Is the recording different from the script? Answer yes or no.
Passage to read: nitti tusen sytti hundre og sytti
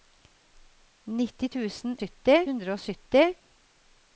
no